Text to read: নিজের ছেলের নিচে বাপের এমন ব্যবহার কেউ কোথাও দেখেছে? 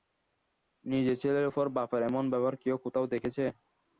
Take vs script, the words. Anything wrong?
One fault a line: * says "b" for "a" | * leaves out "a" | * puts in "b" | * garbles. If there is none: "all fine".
* says "উপর" for "নিচে"